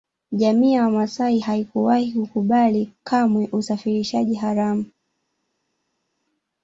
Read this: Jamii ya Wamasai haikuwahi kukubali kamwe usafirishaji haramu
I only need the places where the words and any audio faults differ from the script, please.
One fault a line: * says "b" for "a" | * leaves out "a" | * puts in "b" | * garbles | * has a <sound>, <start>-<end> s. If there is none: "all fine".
all fine